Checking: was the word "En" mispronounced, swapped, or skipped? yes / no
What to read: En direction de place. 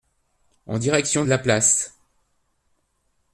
no